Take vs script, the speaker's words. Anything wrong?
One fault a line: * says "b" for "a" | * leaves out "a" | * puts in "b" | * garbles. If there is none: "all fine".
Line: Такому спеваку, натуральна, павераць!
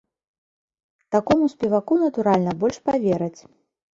* puts in "больш"